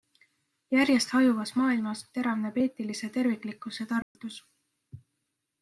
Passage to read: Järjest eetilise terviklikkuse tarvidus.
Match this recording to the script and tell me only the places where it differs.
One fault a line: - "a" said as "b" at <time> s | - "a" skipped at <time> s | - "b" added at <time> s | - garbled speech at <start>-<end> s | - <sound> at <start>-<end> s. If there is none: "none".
- "hajuvas maailmas teravneb" added at 1.2 s
- dropout at 4.0-4.2 s